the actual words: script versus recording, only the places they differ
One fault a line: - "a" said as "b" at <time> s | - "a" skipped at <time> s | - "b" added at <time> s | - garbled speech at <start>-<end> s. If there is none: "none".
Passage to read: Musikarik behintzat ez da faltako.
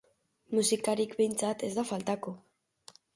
none